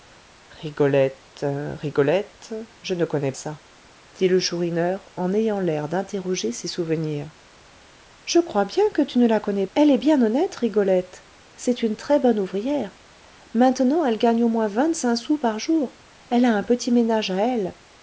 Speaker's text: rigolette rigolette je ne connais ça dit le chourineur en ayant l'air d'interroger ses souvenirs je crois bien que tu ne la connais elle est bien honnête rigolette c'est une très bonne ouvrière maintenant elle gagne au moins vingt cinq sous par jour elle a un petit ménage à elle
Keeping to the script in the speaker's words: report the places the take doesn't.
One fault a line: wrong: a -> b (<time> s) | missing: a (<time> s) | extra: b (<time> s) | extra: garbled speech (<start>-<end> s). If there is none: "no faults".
no faults